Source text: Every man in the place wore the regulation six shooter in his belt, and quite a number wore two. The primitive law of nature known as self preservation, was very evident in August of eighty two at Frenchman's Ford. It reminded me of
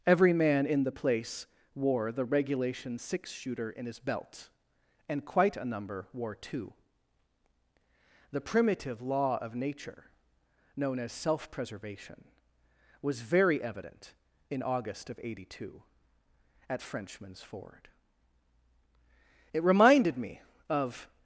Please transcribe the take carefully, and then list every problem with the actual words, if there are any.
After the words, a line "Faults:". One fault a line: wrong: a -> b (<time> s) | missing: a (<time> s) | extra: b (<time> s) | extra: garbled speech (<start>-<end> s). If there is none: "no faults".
Every man in the place wore the regulation six shooter in his belt, and quite a number wore two. The primitive law of nature known as self preservation, was very evident in August of eighty two at Frenchman's Ford. It reminded me of
Faults:
no faults